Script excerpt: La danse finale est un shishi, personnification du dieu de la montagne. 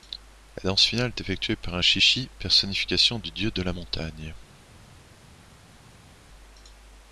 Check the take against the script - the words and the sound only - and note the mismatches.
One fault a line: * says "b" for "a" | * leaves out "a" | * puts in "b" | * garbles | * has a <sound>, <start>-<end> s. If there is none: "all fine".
* puts in "effectuée par"